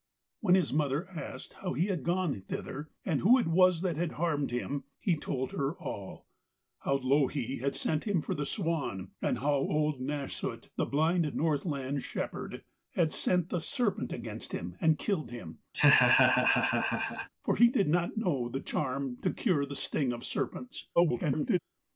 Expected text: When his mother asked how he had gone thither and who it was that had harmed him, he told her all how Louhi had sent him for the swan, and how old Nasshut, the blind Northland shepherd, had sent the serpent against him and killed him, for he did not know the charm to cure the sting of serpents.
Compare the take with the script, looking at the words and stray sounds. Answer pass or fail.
fail